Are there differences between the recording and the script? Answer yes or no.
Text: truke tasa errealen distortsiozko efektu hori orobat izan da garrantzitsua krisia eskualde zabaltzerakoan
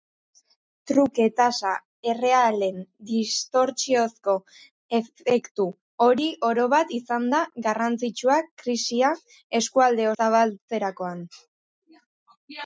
no